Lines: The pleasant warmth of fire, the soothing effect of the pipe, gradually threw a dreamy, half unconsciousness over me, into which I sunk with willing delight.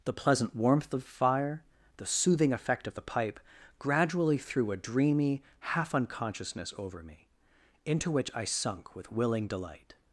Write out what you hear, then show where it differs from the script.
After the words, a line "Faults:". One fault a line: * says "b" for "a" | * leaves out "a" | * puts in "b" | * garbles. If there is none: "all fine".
The pleasant warmth of fire, the soothing effect of the pipe, gradually threw a dreamy, half unconsciousness over me, into which I sunk with willing delight.
Faults:
all fine